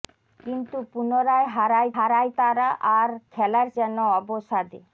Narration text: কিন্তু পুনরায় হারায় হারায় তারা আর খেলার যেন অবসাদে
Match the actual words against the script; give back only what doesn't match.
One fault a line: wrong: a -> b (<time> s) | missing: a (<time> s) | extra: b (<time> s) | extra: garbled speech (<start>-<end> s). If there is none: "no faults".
no faults